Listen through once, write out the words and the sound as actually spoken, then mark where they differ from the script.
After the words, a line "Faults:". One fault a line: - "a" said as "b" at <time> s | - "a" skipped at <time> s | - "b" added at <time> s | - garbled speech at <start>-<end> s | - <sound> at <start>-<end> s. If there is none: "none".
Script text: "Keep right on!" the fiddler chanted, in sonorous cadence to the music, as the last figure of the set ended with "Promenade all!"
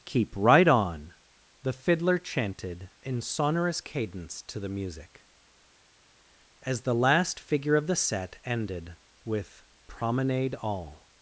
"Keep right on!" the fiddler chanted, in sonorous cadence to the music, as the last figure of the set ended with "Promenade all!"
Faults:
none